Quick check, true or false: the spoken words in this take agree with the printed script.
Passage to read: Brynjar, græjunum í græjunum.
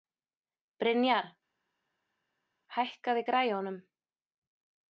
false